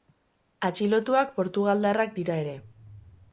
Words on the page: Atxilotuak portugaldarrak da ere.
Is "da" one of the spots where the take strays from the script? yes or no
yes